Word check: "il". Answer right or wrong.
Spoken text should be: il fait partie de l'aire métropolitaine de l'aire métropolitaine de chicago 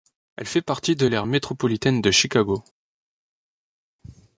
wrong